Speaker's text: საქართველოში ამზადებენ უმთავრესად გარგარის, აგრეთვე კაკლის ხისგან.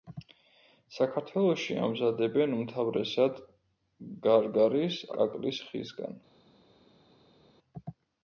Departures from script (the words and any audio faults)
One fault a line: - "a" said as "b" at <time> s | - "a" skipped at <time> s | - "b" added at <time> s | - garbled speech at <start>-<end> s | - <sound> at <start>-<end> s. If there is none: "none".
- "აგრეთვე" skipped at 5.0 s